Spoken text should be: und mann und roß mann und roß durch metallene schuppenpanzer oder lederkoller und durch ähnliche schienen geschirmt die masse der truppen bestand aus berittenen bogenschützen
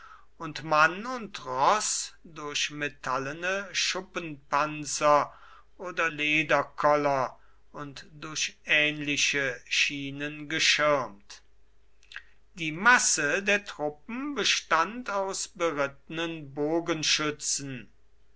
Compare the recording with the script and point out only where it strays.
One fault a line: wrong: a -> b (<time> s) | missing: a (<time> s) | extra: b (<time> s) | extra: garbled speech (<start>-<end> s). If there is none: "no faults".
missing: mann und roß (2.1 s)